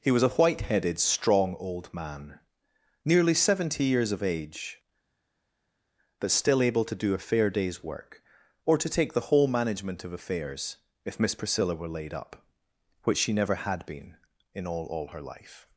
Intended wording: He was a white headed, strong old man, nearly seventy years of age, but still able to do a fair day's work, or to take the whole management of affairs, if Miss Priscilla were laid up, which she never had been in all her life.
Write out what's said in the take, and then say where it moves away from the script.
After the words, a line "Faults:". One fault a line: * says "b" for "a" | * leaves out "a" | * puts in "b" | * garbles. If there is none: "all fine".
He was a white headed, strong old man, nearly seventy years of age, but still able to do a fair day's work, or to take the whole management of affairs, if Miss Priscilla were laid up, which she never had been in all all her life.
Faults:
* puts in "all"